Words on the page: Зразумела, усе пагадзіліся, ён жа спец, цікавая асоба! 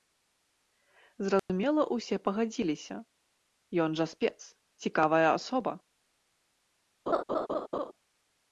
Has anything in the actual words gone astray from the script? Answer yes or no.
no